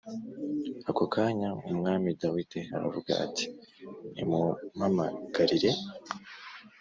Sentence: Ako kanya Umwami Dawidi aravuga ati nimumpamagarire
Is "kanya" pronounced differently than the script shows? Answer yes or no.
no